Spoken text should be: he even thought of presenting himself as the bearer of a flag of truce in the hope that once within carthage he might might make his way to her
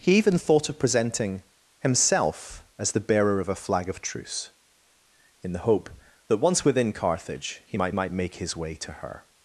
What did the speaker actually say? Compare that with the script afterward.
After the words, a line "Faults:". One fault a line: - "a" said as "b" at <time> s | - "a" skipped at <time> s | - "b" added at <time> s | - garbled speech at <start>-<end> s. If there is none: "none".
he even thought of presenting himself as the bearer of a flag of truce in the hope that once within carthage he might might make his way to her
Faults:
none